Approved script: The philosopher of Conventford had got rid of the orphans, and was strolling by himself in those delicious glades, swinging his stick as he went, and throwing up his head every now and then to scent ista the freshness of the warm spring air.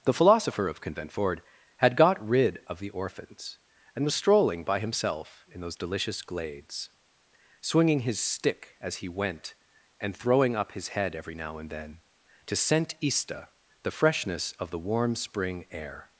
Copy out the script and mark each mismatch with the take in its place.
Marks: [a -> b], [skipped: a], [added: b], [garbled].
The philosopher of Conventford had got rid of the orphans, and was strolling by himself in those delicious glades, swinging his stick as he went, and throwing up his head every now and then to scent ista the freshness of the warm spring air.